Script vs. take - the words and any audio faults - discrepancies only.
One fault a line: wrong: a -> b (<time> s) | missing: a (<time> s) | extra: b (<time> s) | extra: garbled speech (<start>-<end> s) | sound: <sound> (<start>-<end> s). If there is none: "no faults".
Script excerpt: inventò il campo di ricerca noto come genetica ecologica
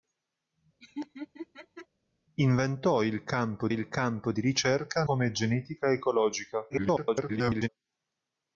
sound: laugh (0.8-1.9 s)
extra: il campo (3.7 s)
missing: noto (5.0 s)
extra: garbled speech (6.7-7.7 s)